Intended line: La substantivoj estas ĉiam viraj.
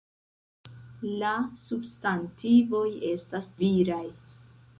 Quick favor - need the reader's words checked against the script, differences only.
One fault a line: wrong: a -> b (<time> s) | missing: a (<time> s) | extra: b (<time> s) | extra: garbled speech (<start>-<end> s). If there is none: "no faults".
missing: ĉiam (3.5 s)